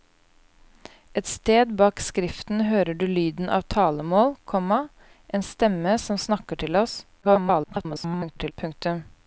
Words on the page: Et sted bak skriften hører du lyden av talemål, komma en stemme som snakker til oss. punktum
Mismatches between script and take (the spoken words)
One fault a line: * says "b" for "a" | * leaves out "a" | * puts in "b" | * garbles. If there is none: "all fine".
* garbles